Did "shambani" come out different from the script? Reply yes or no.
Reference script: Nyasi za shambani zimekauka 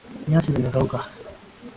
yes